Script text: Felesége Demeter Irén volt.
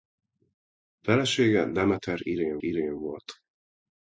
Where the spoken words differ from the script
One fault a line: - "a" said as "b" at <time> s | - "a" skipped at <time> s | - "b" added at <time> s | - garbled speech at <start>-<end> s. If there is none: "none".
- "Irén" added at 2.6 s